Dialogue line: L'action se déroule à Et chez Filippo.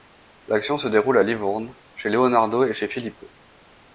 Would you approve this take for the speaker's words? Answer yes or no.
no